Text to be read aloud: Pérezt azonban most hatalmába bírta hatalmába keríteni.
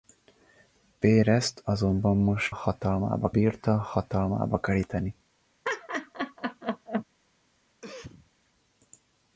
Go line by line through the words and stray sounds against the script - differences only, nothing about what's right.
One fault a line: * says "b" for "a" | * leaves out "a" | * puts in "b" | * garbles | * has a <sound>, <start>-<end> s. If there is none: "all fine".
* has a laugh, 5.6-7.0 s
* has a cough, 7.8-8.3 s